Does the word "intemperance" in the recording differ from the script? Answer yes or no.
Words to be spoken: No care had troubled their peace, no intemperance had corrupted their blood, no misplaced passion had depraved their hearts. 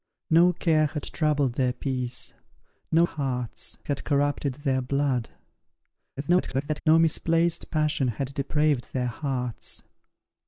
yes